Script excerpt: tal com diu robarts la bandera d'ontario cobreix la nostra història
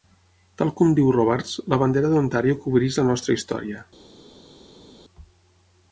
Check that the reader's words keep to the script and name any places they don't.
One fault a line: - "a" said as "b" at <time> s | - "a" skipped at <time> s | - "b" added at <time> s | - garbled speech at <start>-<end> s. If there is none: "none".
none